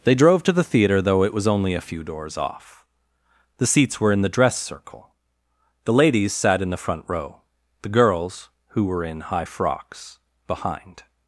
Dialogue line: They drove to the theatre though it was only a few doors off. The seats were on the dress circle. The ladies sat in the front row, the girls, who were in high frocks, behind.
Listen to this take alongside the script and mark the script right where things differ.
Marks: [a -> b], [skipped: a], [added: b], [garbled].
They drove to the theatre though it was only a few doors off. The seats were [on -> in] the dress circle. The ladies sat in the front row, the girls, who were in high frocks, behind.